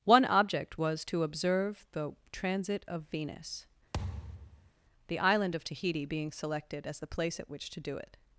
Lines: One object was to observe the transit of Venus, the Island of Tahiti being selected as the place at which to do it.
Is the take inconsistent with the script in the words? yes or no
no